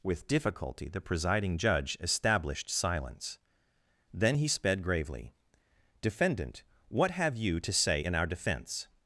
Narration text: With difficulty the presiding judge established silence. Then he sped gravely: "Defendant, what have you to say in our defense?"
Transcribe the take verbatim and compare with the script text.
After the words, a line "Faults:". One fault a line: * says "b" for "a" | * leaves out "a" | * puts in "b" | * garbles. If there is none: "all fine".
With difficulty the presiding judge established silence. Then he sped gravely: "Defendant, what have you to say in our defense?"
Faults:
all fine